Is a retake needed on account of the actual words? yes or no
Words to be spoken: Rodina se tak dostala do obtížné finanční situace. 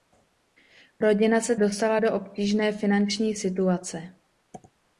yes